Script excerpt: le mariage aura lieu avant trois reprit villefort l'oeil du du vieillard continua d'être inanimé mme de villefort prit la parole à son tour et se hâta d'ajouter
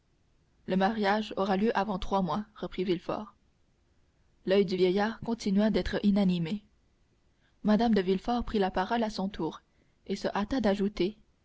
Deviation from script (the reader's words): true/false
true